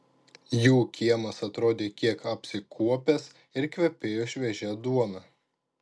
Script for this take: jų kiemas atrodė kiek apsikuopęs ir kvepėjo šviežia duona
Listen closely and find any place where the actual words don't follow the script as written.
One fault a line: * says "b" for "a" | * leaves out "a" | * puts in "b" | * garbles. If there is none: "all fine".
all fine